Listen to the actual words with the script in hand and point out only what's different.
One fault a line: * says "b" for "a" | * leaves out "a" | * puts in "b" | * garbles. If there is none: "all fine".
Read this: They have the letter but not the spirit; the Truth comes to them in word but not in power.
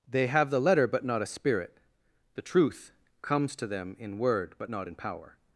* says "a" for "the"